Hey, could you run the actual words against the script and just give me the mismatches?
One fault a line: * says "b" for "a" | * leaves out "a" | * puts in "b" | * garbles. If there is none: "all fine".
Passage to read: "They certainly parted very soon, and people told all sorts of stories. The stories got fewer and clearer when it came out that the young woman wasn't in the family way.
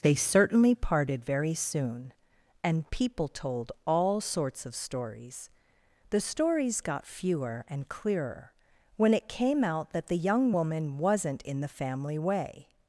all fine